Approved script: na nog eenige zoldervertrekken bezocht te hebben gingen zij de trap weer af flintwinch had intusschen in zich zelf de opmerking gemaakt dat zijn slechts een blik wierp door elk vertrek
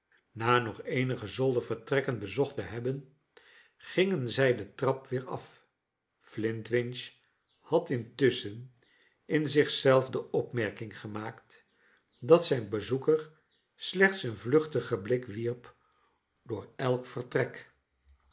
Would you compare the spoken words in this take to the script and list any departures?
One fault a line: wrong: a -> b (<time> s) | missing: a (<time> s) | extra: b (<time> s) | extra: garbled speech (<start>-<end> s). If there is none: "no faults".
extra: bezoeker (12.7 s)
extra: vluchtigen (14.4 s)